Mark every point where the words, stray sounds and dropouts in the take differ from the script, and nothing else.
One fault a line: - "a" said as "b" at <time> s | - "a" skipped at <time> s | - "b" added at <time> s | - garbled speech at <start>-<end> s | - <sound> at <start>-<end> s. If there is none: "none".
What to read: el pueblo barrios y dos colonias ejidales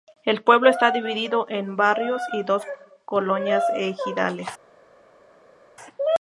- "está dividido en" added at 0.7 s